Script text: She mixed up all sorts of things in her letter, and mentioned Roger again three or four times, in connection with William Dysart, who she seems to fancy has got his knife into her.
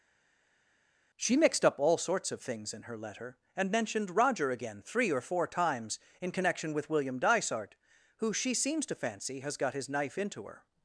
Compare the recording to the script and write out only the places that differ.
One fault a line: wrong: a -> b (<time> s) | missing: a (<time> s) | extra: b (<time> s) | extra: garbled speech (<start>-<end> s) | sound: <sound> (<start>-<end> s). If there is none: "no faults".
no faults